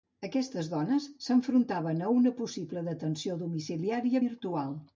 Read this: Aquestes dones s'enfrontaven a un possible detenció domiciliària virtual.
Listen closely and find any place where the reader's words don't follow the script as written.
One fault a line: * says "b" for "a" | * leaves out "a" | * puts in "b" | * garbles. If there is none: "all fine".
* says "una" for "un"